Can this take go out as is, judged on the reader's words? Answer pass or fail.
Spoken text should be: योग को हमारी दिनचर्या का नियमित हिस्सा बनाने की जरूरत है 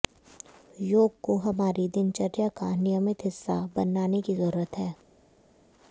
pass